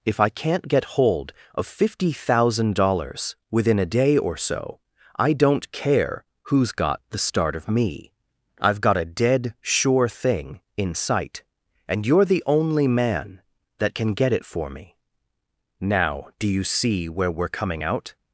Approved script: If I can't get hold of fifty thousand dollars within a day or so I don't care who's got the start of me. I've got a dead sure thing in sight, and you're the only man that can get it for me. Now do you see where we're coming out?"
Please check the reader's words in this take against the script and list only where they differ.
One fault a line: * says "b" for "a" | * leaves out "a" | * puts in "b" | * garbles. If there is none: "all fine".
all fine